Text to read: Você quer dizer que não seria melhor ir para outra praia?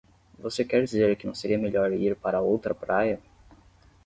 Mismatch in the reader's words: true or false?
false